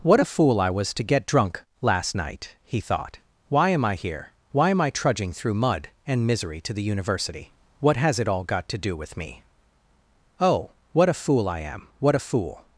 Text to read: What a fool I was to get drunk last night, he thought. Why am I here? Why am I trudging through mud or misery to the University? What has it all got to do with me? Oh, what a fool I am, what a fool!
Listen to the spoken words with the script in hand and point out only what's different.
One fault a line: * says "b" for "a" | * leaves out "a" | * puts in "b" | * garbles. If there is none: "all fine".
* says "and" for "or"